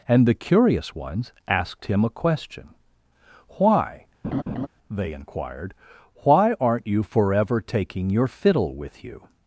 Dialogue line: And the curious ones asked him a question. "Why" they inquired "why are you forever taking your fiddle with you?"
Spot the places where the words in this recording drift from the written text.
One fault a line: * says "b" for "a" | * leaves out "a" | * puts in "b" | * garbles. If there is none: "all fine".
* says "aren't" for "are"